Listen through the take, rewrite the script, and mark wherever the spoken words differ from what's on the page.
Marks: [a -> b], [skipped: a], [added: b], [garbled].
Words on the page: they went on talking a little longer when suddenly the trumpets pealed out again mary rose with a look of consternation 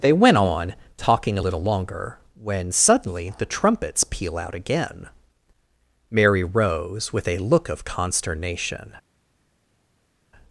they went on talking a little longer when suddenly the trumpets [pealed -> peal] out again mary rose with a look of consternation